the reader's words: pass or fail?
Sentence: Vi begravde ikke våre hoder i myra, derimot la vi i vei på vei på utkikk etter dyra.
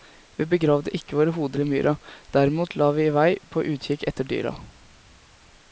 fail